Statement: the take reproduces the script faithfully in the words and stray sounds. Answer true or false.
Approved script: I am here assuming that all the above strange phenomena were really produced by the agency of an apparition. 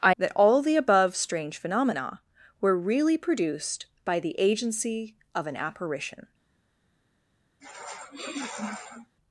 false